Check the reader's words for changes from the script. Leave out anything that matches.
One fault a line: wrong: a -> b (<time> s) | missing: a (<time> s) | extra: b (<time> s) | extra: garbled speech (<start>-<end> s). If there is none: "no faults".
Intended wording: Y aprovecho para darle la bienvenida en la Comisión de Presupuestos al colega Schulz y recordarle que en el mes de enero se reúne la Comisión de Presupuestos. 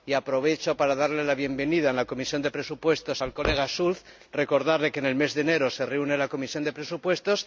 no faults